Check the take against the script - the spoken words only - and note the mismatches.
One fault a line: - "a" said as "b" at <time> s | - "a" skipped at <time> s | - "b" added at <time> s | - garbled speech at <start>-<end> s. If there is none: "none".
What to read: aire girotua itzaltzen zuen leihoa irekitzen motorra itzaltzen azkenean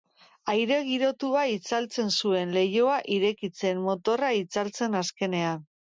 none